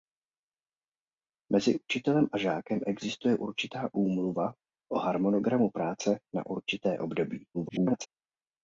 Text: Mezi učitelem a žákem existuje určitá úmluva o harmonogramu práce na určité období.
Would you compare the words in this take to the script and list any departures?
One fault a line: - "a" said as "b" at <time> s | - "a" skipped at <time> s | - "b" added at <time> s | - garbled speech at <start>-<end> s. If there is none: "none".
- garbled speech at 7.5-8.1 s